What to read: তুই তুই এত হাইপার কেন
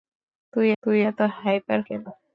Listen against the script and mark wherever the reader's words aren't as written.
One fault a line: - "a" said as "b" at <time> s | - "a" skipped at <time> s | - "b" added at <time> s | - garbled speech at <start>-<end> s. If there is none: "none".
none